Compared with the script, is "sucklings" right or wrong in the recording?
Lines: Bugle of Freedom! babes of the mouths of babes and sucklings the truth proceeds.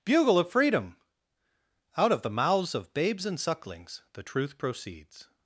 right